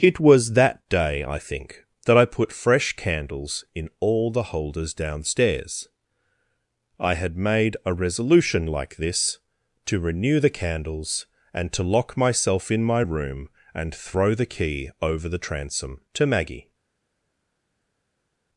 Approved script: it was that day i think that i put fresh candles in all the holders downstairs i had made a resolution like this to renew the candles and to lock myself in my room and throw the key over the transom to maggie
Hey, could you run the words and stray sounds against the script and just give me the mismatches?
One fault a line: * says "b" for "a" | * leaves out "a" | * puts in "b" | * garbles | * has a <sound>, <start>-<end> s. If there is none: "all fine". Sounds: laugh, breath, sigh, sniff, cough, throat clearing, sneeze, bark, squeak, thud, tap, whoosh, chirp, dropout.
all fine